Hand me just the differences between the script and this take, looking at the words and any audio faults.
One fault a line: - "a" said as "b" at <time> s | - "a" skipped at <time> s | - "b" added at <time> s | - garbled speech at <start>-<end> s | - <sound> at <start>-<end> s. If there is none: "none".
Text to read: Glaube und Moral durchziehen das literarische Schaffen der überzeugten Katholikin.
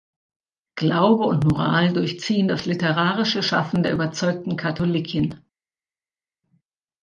none